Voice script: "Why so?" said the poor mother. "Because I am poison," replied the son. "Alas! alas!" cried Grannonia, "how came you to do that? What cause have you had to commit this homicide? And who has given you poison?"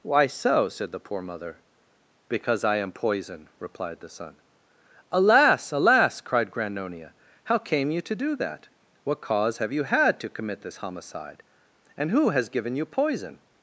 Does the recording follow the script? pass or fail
pass